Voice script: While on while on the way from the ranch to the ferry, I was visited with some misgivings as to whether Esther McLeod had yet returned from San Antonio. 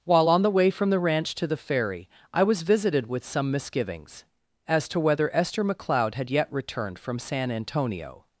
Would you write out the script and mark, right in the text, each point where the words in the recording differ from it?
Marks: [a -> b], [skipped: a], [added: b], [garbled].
While on [skipped: while on] the way from the ranch to the ferry, I was visited with some misgivings as to whether Esther McLeod had yet returned from San Antonio.